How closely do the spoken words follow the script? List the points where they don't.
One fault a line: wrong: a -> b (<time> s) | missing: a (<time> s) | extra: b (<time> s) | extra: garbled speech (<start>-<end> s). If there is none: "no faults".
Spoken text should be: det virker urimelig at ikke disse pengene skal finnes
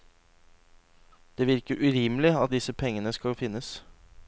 missing: ikke (2.5 s)